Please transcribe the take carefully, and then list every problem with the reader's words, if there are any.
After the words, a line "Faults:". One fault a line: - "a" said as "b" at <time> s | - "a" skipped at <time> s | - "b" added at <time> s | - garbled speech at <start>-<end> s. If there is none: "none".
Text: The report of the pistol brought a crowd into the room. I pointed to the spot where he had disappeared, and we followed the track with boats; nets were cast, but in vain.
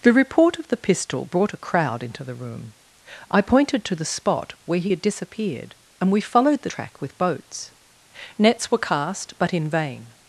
The report of the pistol brought a crowd into the room. I pointed to the spot where he had disappeared, and we followed the track with boats; nets were cast, but in vain.
Faults:
none